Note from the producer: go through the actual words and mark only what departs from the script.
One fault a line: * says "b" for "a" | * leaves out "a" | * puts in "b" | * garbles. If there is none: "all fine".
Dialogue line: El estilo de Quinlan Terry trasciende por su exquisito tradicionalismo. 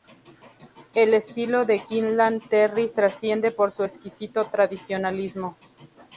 all fine